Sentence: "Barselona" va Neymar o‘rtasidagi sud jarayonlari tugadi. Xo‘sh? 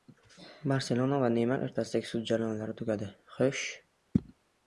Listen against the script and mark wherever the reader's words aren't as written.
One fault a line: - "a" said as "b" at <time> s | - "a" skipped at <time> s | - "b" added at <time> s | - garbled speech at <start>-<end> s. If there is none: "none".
none